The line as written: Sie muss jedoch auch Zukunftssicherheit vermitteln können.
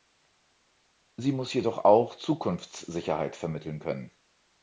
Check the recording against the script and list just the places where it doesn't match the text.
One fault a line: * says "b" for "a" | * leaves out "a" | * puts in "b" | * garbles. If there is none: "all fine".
all fine